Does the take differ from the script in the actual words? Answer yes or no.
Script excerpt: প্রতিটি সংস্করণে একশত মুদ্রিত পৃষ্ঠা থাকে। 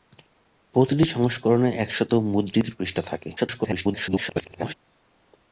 yes